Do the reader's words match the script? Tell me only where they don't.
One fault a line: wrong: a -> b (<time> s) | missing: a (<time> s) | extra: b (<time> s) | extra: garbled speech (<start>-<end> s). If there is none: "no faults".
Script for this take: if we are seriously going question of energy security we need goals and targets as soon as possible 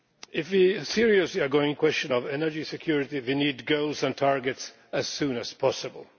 no faults